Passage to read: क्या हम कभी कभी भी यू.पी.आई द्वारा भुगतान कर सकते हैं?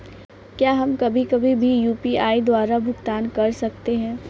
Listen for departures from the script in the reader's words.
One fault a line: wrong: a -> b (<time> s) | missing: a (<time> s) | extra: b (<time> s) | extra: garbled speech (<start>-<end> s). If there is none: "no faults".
no faults